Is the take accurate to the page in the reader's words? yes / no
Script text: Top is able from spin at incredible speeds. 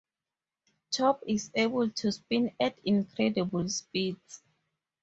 no